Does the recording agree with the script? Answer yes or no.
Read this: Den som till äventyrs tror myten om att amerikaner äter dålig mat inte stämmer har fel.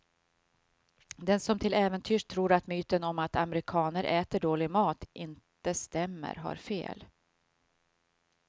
no